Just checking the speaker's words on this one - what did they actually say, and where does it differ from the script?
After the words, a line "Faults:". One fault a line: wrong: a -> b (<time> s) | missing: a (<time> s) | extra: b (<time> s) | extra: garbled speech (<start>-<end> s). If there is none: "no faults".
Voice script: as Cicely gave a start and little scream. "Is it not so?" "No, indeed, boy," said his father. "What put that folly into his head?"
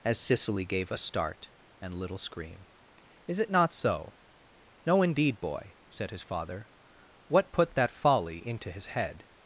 as Cicely gave a start and little scream. "Is it not so?" "No, indeed, boy," said his father. "What put that folly into his head?"
Faults:
no faults